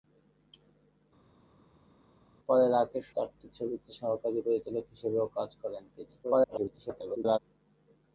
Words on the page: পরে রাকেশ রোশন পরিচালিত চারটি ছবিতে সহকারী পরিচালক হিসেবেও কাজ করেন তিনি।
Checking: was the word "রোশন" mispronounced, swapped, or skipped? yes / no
yes